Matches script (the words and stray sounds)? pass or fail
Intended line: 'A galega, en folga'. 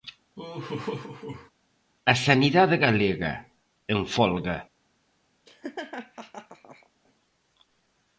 fail